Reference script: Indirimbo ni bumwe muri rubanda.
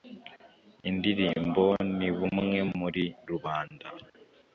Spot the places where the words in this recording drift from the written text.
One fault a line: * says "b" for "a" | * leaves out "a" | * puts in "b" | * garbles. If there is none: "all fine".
all fine